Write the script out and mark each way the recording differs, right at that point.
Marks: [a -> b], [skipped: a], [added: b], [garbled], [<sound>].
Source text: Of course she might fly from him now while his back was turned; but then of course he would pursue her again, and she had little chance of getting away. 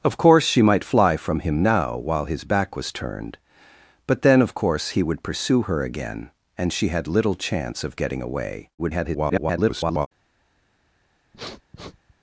Of course she might fly from him now while his back was turned; but then of course he would pursue her again, and she had little chance of getting away. [garbled] [sniff]